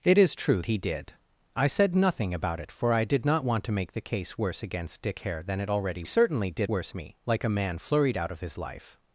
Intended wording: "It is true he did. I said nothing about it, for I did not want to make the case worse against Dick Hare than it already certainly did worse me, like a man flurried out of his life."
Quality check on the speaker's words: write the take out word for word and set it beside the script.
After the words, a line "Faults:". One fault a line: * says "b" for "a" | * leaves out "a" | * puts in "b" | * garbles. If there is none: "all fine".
"It is true he did. I said nothing about it, for I did not want to make the case worse against Dick Hare than it already certainly did worse me, like a man flurried out of his life."
Faults:
all fine